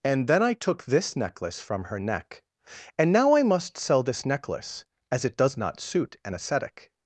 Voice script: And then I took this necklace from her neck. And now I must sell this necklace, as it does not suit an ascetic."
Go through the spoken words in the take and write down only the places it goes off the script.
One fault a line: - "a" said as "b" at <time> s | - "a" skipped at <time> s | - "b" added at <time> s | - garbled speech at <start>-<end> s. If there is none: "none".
none